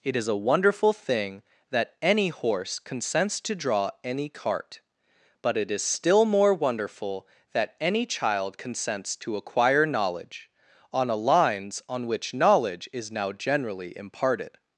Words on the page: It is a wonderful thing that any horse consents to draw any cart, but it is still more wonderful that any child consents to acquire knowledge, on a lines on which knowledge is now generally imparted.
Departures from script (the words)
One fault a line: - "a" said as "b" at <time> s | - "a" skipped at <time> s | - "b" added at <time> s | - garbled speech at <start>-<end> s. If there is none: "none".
none